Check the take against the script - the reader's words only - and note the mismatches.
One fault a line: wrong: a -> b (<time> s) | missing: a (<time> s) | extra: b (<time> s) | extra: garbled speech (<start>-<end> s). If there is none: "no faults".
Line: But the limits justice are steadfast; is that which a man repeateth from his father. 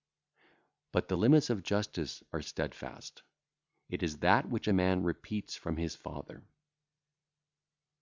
extra: of (1.5 s)
extra: it (3.9 s)